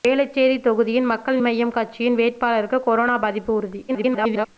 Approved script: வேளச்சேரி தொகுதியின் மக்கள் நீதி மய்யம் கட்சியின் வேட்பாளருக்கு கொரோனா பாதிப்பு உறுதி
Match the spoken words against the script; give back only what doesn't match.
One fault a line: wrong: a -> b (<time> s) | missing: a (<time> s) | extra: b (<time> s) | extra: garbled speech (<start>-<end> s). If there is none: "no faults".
missing: நீதி (1.4 s)
extra: garbled speech (3.9-4.5 s)